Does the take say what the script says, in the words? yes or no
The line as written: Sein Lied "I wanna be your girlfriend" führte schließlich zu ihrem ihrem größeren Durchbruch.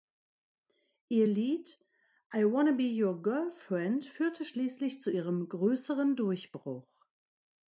no